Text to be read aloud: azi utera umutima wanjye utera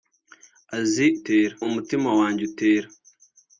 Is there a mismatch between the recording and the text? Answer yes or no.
no